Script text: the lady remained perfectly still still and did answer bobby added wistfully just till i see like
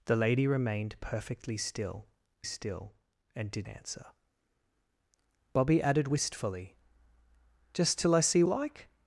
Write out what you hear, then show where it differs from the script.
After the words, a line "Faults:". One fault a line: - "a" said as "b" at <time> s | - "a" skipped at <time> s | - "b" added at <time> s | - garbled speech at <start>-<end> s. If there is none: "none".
the lady remained perfectly still still and did answer bobby added wistfully just till i see like
Faults:
none